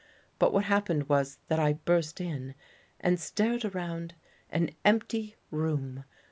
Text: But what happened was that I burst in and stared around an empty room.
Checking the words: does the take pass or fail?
pass